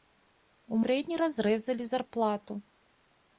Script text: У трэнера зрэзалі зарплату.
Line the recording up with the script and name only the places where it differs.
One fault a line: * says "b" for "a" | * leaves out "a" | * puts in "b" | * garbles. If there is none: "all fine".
all fine